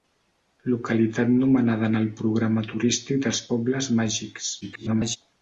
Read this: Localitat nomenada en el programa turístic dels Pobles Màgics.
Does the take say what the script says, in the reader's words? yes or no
no